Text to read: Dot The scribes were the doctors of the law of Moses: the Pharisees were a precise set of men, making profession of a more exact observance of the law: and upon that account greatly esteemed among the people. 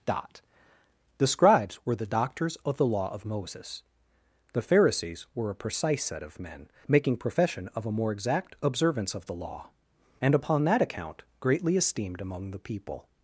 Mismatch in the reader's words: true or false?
false